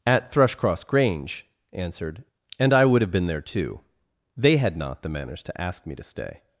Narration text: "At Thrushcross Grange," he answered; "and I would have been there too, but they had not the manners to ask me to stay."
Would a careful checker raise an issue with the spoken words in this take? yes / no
yes